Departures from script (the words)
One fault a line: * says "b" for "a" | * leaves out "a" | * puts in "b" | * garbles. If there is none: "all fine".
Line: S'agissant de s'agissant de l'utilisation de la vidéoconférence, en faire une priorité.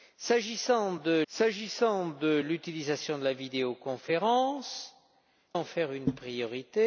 all fine